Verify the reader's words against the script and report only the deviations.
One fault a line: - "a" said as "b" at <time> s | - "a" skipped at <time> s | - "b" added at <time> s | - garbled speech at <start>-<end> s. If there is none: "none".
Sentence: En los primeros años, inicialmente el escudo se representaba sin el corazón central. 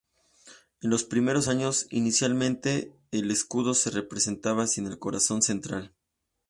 none